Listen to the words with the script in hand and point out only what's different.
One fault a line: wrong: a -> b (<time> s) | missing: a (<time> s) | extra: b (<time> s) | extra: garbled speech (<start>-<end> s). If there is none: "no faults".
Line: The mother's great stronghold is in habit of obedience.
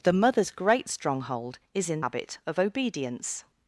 no faults